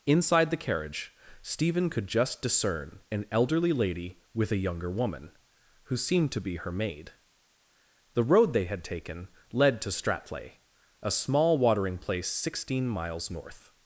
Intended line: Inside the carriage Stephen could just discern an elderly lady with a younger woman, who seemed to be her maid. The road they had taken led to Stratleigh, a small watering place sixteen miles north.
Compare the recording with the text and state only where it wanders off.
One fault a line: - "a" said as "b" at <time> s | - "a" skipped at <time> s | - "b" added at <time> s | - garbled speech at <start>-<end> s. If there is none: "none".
none